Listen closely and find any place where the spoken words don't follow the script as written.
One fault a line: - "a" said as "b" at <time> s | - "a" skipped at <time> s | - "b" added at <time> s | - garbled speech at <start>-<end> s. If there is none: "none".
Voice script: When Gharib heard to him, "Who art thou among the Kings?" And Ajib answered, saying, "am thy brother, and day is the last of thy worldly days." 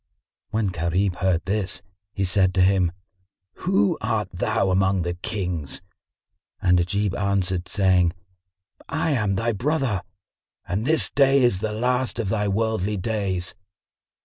- "this he said" added at 1.4 s
- "I" added at 8.9 s
- "this" added at 10.8 s